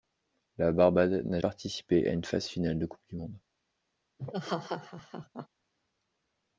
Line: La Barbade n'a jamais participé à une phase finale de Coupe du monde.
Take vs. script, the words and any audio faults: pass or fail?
fail